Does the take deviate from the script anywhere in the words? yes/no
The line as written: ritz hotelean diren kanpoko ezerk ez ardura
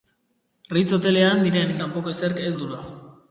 no